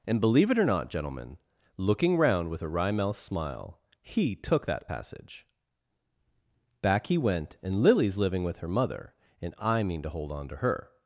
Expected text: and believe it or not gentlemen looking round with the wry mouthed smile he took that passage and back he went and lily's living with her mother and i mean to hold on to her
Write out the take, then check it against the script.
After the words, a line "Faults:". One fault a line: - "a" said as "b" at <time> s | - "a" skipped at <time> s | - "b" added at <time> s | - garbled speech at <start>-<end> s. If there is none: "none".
and believe it or not gentlemen looking round with a wry mouthed smile he took that passage back he went and lily's living with her mother and i mean to hold on to her
Faults:
- "the" said as "a" at 2.6 s
- "and" skipped at 5.5 s